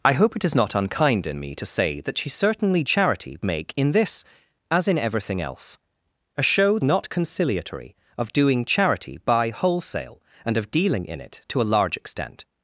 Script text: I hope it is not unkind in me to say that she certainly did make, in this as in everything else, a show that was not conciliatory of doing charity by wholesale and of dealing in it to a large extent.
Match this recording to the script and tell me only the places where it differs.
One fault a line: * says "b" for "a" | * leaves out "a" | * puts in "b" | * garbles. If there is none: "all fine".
* says "charity" for "did"
* leaves out "that was"